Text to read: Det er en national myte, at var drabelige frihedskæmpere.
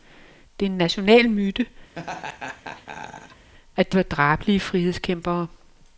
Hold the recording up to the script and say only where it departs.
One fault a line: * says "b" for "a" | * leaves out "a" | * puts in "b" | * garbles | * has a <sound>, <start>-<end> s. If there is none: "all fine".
* has a laugh, 2.0-3.5 s